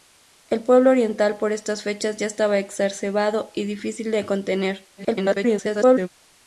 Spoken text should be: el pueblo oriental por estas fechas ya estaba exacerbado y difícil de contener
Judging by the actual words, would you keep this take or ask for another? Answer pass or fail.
fail